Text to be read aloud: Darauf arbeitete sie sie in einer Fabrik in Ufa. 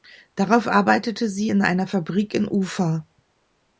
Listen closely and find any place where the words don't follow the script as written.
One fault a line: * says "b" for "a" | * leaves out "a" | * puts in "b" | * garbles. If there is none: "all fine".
* leaves out "sie"